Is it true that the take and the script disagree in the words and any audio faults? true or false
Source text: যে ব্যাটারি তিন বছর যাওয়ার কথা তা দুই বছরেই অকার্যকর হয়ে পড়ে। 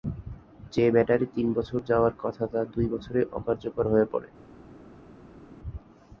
false